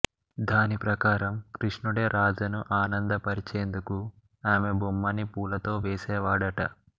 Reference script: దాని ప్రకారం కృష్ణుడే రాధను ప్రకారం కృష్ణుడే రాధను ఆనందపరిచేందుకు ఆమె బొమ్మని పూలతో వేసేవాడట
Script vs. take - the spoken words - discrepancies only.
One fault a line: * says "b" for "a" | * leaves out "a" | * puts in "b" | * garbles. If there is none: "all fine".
* leaves out "ప్రకారం కృష్ణుడే రాధను"